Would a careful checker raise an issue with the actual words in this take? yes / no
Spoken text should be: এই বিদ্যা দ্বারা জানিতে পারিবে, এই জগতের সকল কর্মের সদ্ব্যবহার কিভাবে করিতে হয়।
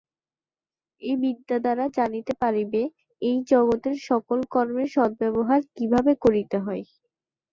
no